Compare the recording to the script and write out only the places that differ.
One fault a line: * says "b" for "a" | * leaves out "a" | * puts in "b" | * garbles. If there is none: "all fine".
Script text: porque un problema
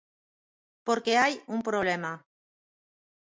* puts in "hai"